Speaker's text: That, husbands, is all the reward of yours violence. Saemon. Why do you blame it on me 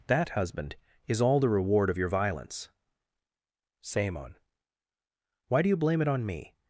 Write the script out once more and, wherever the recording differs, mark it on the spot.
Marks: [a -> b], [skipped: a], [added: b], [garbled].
That, [husbands, -> husband] is all the reward of [yours -> your] violence. Saemon. Why do you blame it on me